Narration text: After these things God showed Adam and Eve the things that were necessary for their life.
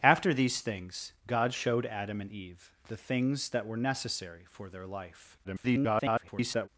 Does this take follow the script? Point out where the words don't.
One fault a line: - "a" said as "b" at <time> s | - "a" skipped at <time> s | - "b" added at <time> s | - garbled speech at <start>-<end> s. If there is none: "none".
- garbled speech at 5.4-6.7 s